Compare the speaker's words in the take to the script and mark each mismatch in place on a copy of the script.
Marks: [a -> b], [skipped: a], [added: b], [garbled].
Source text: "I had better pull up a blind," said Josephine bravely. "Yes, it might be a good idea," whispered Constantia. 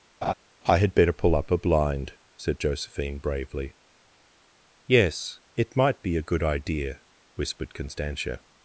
"I had better pull up a blind," said Josephine bravely. "Yes, it might be a good idea," whispered Constantia.